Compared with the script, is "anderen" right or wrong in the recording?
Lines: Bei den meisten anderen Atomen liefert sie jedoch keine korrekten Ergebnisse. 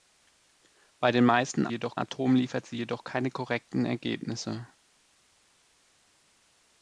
wrong